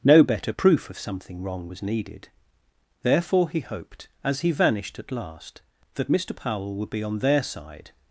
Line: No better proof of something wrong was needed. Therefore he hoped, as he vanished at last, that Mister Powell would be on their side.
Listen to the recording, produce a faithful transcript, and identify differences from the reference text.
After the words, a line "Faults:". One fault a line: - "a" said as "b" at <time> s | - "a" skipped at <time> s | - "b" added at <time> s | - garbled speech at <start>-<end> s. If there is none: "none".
No better proof of something wrong was needed. Therefore he hoped, as he vanished at last, that Mister Powell would be on their side.
Faults:
none